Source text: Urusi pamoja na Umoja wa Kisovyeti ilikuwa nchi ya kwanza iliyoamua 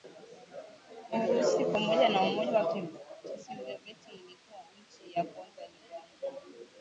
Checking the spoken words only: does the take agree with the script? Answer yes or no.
yes